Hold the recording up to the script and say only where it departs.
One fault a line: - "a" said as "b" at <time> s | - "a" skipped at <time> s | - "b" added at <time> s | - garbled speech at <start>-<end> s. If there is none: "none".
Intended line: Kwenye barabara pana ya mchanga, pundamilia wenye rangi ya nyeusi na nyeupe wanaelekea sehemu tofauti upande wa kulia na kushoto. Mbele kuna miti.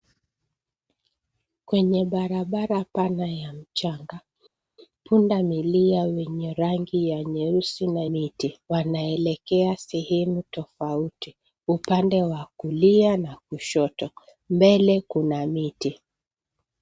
- "nyeupe" said as "miti" at 8.0 s